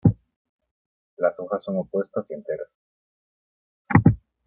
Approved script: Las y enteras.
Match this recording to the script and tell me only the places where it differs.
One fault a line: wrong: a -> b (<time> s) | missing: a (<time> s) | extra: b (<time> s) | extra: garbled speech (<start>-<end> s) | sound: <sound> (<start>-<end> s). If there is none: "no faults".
extra: hojas son opuestas (1.4 s)